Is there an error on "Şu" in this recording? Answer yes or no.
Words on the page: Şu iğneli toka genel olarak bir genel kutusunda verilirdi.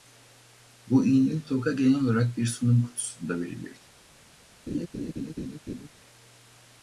yes